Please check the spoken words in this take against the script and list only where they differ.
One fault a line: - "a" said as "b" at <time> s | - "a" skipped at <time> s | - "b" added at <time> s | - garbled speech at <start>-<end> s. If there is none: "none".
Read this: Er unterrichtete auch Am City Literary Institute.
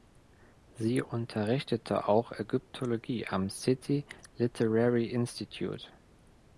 - "Er" said as "Sie" at 0.7 s
- "Ägyptologie" added at 2.3 s